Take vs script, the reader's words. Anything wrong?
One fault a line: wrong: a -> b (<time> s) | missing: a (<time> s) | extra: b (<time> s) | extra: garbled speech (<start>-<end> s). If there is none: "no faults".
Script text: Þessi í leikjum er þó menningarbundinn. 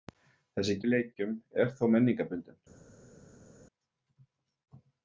no faults